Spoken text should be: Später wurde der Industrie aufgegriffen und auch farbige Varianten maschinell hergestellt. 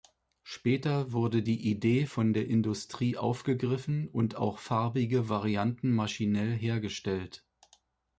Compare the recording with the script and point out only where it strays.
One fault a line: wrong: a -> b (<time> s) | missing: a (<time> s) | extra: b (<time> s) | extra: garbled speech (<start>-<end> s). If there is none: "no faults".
extra: die Idee von (1.4 s)